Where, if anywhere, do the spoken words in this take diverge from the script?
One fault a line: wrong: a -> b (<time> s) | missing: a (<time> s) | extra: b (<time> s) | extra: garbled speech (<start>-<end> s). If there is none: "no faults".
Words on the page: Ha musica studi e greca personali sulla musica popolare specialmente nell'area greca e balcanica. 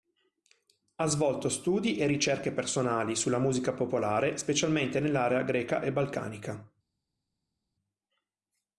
wrong: musica -> svolto (1.1 s)
wrong: greca -> ricerche (2.1 s)